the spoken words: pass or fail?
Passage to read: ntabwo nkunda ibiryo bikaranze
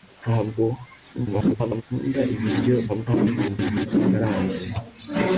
fail